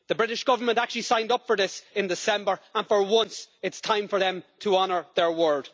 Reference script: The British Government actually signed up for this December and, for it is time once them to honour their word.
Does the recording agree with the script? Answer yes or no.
no